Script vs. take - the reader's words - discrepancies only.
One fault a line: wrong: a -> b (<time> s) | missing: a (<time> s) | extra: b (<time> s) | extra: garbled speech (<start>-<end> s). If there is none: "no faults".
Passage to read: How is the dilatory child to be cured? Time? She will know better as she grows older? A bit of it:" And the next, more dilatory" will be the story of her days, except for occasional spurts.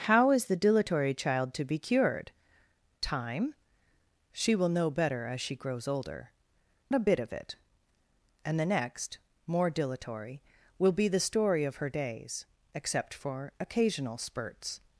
no faults